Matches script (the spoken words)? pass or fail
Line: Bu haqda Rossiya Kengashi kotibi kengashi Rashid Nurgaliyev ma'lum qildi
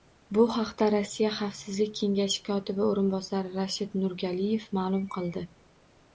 fail